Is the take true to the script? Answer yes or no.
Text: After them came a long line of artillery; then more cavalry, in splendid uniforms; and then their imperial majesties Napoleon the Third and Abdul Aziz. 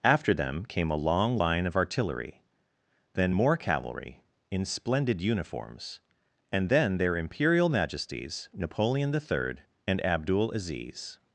yes